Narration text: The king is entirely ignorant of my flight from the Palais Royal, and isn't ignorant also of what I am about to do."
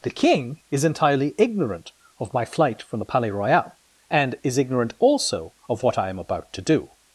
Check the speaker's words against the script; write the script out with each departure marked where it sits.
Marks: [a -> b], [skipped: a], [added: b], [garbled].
The king is entirely ignorant of my flight from the Palais Royal, and [isn't -> is] ignorant also of what I am about to do."